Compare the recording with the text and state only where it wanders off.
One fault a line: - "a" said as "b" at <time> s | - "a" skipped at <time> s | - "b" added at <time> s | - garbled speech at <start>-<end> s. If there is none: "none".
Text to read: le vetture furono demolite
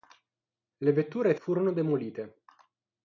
none